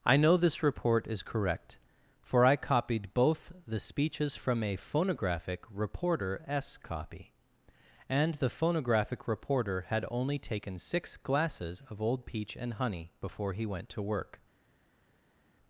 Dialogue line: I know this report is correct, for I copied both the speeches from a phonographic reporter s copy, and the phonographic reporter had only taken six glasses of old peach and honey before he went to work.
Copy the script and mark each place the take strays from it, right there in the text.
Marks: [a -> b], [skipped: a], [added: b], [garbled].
I know this report is correct, for I copied both the speeches from a phonographic reporter s copy, and the phonographic reporter had only taken six glasses of old peach and honey before he went to work.